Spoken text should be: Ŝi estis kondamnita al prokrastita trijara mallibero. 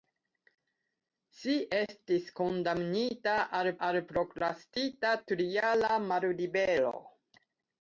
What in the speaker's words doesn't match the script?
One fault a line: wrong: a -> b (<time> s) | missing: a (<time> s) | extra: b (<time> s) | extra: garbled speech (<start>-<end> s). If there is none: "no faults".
extra: al (3.9 s)